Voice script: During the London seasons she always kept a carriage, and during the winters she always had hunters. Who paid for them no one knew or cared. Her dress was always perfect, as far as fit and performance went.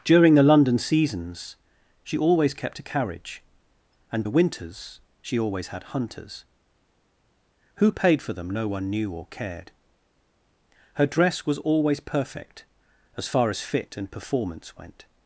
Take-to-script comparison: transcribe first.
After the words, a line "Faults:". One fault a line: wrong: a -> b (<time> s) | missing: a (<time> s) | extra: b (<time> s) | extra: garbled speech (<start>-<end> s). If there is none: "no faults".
During the London seasons she always kept a carriage, and the winters she always had hunters. Who paid for them no one knew or cared. Her dress was always perfect, as far as fit and performance went.
Faults:
missing: during (4.2 s)